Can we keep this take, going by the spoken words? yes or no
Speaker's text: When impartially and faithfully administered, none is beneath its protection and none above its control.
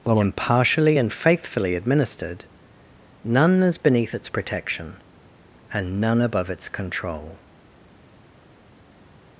no